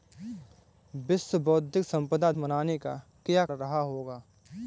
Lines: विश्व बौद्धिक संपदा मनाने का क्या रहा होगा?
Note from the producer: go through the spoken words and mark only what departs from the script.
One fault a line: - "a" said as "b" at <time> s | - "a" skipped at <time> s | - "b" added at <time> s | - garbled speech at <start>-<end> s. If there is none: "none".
none